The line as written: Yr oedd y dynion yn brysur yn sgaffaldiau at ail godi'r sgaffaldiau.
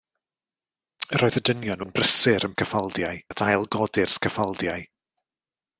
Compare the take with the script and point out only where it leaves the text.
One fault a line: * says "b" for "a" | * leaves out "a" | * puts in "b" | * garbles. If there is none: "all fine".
all fine